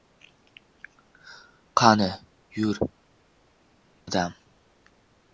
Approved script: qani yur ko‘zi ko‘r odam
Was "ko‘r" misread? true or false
true